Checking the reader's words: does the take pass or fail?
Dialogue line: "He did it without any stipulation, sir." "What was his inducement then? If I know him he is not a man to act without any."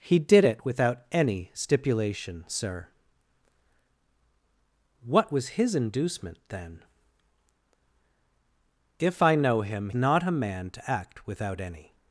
fail